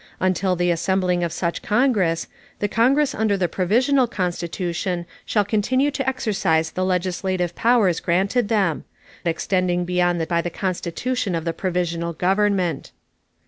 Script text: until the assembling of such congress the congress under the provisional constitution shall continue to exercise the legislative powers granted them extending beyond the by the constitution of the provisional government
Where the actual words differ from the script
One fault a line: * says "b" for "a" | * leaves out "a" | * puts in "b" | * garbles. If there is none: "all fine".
all fine